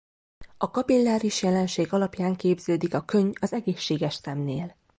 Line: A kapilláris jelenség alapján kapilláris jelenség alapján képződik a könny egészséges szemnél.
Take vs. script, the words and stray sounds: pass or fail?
fail